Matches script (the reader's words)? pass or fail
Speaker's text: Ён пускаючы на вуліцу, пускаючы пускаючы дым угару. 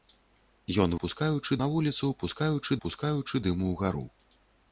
pass